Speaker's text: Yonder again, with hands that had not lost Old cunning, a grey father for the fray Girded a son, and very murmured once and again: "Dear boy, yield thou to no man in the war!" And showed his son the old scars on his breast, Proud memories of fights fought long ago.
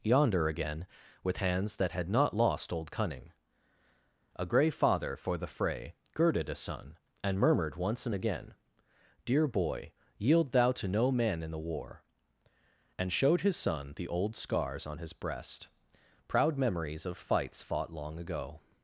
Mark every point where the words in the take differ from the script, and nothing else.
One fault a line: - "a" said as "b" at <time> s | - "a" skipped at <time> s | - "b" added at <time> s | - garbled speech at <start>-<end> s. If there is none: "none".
- "very" skipped at 7.4 s